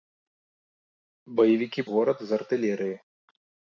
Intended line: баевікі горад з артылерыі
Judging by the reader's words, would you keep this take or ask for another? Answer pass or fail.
pass